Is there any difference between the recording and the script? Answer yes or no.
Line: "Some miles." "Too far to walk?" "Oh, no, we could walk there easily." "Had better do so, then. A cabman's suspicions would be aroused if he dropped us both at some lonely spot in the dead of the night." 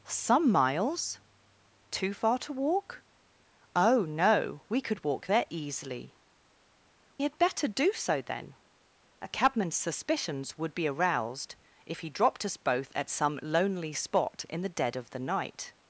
no